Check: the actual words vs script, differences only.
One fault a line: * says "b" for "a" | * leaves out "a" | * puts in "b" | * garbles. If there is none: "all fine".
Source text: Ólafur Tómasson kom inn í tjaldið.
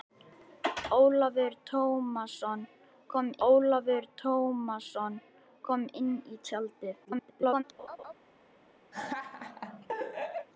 * puts in "ólafur Tómasson kom"
* garbles